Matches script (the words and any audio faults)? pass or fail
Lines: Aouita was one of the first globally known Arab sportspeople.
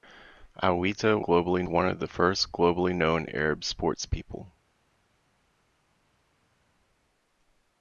fail